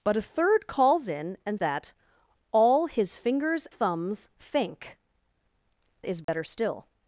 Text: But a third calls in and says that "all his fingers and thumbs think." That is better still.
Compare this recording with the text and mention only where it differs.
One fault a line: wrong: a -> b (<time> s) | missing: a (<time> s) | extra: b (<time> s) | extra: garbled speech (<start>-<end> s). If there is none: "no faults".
missing: says (1.6 s)
missing: and (3.7 s)
missing: That (5.0 s)